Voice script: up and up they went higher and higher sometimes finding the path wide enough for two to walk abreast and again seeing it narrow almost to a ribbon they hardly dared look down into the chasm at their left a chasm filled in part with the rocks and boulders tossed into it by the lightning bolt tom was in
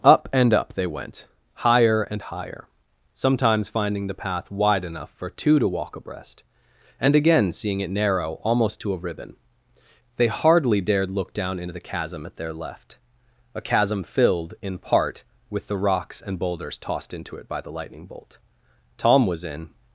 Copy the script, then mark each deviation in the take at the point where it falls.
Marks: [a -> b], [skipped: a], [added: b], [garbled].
up and up they went higher and higher sometimes finding the path wide enough for two to walk abreast and again seeing it narrow almost to a ribbon they hardly dared look down into the chasm at their left a chasm filled in part with the rocks and boulders tossed into it by the lightning bolt tom was in